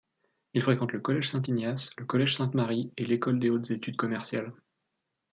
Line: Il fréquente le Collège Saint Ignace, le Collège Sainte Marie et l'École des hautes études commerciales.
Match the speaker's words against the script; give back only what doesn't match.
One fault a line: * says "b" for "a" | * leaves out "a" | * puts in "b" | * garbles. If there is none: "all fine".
all fine